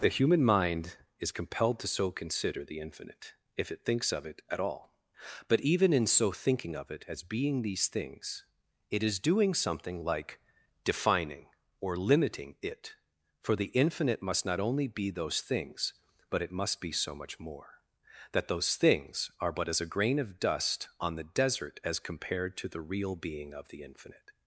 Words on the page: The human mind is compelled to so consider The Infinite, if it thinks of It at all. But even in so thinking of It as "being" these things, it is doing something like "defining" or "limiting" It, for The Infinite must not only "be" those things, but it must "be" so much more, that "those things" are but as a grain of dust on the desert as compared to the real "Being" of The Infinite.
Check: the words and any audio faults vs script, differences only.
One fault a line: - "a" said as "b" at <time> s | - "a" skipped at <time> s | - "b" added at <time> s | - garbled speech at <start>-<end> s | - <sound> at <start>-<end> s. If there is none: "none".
none